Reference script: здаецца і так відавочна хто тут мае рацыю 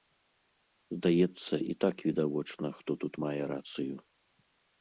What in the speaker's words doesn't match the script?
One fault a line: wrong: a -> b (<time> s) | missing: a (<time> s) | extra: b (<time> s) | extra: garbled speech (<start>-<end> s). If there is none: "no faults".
no faults